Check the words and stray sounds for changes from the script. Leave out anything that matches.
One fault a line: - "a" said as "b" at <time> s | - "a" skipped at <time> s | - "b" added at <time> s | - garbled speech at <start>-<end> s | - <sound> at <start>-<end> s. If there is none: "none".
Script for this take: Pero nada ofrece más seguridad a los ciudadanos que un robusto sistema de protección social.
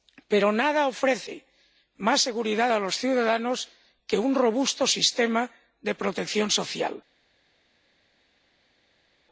none